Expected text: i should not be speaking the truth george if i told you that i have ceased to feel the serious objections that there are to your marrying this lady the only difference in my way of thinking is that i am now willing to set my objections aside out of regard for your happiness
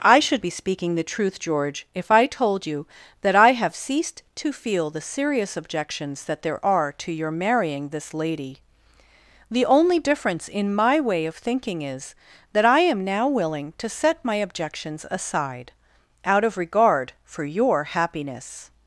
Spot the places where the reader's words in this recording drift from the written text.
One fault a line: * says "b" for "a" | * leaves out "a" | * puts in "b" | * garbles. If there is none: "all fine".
* leaves out "not"